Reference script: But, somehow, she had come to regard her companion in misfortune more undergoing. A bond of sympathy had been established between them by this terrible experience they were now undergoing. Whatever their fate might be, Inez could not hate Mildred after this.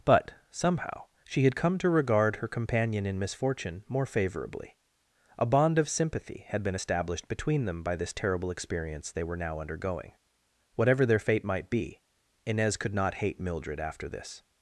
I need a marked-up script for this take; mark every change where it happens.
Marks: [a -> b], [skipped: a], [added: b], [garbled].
But, somehow, she had come to regard her companion in misfortune more [undergoing. -> favorably] A bond of sympathy had been established between them by this terrible experience they were now undergoing. Whatever their fate might be, Inez could not hate Mildred after this.